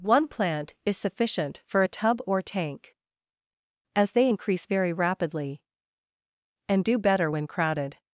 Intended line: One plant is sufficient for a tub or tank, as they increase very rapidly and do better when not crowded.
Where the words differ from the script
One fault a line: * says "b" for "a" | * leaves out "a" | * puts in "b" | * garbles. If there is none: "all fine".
* leaves out "not"